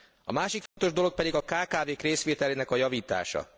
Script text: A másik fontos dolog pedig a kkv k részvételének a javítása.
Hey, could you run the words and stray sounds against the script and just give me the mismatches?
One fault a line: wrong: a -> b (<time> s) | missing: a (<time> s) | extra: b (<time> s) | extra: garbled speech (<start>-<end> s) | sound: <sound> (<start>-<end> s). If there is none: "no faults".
sound: dropout (0.7-0.8 s)